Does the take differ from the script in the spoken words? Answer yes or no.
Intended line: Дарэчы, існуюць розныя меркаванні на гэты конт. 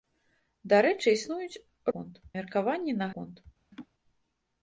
yes